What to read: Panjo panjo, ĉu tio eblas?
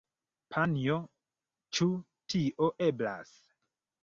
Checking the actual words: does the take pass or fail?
fail